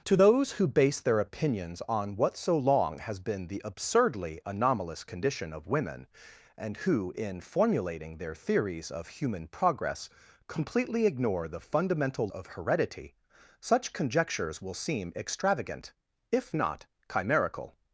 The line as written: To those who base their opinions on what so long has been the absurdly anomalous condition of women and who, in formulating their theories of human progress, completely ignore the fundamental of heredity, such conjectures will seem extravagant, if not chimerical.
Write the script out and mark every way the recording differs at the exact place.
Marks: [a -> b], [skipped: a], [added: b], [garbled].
To those who base their opinions on what so long has been the absurdly anomalous condition of women and who, in formulating their theories of human progress, completely ignore the fundamental of heredity, such conjectures will seem extravagant, if not chimerical.